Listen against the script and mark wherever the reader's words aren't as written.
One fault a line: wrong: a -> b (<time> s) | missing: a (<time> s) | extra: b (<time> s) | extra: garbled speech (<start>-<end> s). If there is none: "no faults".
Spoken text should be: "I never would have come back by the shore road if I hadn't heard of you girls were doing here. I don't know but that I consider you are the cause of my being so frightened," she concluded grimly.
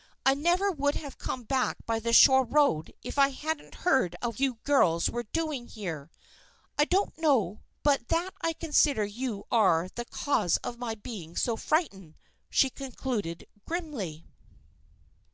no faults